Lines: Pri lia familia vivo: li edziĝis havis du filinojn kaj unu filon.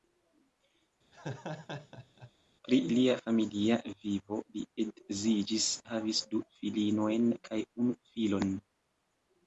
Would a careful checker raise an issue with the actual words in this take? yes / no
no